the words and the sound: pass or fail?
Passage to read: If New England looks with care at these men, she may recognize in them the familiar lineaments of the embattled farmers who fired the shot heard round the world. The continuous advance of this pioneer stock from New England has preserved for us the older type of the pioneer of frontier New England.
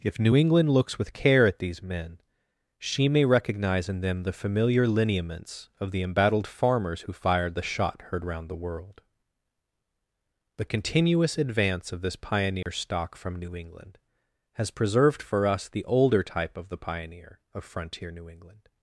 fail